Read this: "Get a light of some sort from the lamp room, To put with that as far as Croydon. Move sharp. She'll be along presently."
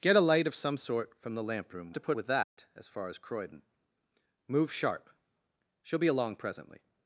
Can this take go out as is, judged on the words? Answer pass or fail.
pass